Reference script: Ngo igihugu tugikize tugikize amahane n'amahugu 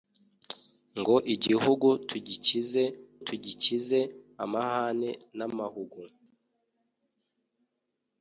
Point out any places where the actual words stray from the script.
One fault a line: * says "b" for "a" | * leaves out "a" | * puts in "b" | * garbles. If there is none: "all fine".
all fine